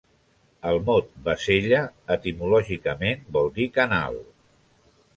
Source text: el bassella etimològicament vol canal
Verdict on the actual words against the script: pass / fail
fail